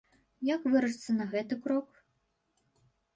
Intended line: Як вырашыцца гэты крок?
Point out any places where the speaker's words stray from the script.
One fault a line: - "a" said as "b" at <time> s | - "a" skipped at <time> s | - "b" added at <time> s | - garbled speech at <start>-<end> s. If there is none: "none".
- "на" added at 1.2 s